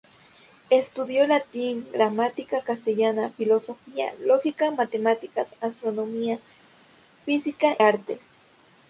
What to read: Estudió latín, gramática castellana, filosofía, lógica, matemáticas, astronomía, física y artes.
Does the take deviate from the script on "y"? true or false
true